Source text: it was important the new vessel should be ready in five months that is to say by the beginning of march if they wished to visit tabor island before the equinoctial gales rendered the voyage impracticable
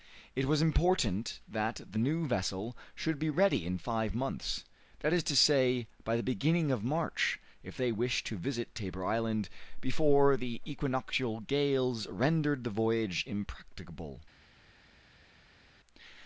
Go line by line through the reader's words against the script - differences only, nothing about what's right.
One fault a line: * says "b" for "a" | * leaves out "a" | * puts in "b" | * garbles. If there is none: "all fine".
* puts in "that"